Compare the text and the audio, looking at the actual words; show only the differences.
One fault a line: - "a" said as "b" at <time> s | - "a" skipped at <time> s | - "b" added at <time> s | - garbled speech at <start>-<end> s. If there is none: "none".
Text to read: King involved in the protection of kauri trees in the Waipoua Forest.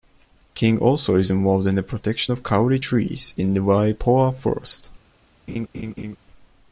- "also is" added at 0.8 s